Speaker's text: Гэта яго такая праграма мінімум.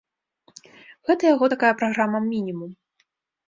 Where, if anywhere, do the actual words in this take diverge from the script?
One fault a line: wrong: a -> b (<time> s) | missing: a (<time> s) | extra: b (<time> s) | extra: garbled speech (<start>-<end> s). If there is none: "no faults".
no faults